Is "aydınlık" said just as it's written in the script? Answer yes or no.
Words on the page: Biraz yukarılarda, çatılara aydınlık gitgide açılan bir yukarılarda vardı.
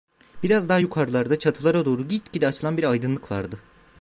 no